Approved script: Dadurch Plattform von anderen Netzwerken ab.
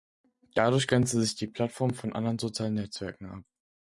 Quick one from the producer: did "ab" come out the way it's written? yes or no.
yes